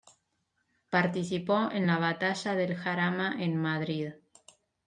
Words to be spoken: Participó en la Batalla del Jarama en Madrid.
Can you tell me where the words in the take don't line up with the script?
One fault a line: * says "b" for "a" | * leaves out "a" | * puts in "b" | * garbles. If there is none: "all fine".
all fine